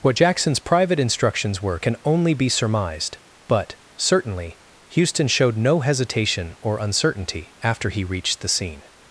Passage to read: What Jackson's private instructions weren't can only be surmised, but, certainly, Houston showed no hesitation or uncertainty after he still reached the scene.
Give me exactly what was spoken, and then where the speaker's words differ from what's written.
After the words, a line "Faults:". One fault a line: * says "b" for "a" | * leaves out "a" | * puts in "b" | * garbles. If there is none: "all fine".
What Jackson's private instructions were can only be surmised, but, certainly, Houston showed no hesitation or uncertainty after he reached the scene.
Faults:
* says "were" for "weren't"
* leaves out "still"